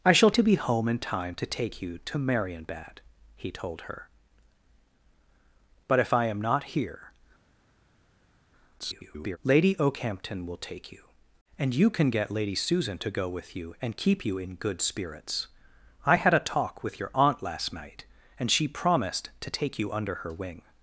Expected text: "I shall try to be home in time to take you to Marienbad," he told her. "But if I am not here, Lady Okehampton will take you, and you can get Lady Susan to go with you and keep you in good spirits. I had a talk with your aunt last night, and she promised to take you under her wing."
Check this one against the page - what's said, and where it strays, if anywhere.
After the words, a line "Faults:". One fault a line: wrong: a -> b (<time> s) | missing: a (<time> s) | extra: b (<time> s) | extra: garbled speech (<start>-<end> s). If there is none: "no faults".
"I shall to be home in time to take you to Marienbad," he told her. "But if I am not here, [garbled] Lady Okehampton will take you, and you can get Lady Susan to go with you and keep you in good spirits. I had a talk with your aunt last night, and she promised to take you under her wing."
Faults:
missing: try (0.3 s)
extra: garbled speech (8.8-9.4 s)